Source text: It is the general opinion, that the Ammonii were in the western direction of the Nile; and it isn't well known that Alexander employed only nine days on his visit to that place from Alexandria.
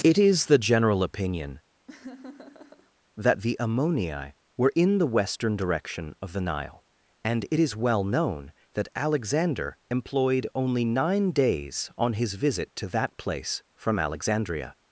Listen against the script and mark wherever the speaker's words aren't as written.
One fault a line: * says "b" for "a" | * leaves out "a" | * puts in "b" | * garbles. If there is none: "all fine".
* says "is" for "isn't"